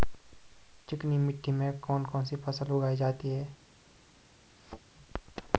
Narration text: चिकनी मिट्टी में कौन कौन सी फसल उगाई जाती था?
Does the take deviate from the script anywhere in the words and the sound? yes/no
yes